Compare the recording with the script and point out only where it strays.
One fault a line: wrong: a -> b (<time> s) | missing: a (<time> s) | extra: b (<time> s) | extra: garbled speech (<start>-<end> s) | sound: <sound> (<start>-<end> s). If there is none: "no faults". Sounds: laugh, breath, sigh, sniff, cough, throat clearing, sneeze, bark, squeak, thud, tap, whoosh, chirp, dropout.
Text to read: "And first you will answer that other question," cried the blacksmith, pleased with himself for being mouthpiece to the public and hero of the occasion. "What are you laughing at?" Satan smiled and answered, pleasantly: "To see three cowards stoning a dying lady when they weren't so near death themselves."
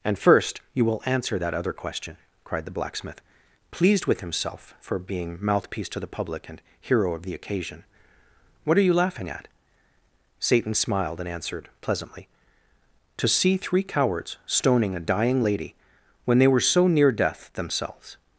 wrong: weren't -> were (16.5 s)